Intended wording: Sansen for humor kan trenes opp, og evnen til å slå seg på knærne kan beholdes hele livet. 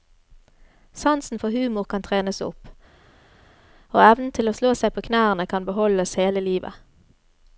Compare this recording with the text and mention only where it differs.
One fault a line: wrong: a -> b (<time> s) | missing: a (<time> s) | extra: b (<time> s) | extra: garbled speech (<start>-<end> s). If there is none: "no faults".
no faults